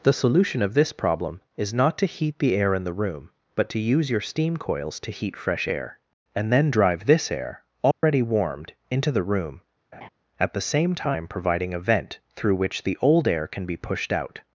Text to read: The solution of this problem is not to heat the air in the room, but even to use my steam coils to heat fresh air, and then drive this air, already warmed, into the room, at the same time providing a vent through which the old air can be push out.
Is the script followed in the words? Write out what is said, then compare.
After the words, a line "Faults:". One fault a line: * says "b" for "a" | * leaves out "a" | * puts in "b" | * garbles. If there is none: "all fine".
The solution of this problem is not to heat the air in the room, but to use your steam coils to heat fresh air, and then drive this air, already warmed, into the room, at the same time providing a vent through which the old air can be pushed out.
Faults:
* leaves out "even"
* says "your" for "my"
* says "pushed" for "push"